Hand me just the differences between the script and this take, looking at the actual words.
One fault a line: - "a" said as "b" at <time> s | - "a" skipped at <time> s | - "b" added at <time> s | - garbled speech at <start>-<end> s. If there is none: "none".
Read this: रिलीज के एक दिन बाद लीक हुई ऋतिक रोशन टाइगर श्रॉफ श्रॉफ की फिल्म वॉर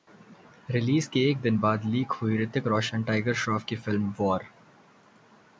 - "श्रॉफ" skipped at 3.6 s